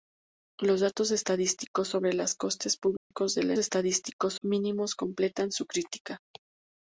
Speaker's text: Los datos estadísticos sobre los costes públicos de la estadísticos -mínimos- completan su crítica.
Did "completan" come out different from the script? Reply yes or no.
no